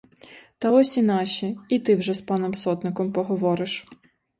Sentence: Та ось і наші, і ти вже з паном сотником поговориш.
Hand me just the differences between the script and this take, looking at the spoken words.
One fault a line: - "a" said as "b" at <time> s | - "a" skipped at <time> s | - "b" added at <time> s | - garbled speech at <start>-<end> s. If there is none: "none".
none